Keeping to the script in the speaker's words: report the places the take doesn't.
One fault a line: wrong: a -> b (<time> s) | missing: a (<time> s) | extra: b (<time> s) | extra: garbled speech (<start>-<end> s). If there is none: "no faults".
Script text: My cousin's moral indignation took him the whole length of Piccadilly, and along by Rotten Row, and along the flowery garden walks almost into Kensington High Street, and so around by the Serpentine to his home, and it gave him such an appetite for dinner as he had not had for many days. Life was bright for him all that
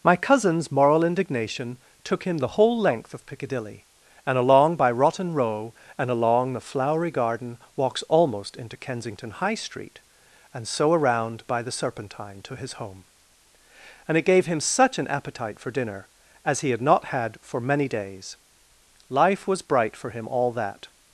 no faults